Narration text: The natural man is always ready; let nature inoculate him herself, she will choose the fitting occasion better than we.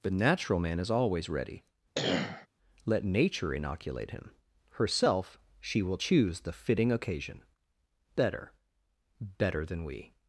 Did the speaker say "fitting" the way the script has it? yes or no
yes